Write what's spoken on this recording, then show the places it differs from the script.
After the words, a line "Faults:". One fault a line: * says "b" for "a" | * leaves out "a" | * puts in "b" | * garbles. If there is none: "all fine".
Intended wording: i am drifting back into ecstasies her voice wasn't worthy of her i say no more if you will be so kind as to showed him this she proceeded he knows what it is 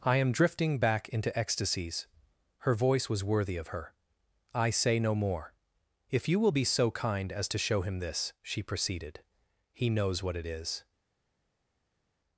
i am drifting back into ecstasies her voice was worthy of her i say no more if you will be so kind as to show him this she proceeded he knows what it is
Faults:
* says "was" for "wasn't"
* says "show" for "showed"